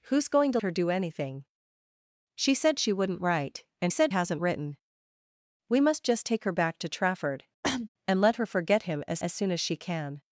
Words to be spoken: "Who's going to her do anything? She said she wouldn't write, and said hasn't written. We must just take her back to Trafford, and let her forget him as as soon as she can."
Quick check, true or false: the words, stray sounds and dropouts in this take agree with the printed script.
false